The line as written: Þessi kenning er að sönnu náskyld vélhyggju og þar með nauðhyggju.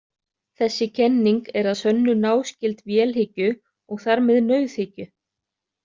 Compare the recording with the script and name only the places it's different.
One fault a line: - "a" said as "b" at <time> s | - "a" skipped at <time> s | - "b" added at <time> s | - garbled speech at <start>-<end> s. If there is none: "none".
none